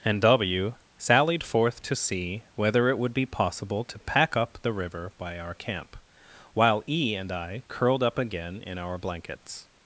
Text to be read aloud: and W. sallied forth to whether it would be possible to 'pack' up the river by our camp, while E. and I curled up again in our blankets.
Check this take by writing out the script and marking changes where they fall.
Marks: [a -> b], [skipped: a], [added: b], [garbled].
and W. sallied forth to [added: see] whether it would be possible to 'pack' up the river by our camp, while E. and I curled up again in our blankets.